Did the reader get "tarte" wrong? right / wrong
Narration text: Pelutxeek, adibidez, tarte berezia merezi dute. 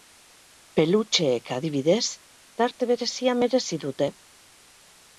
right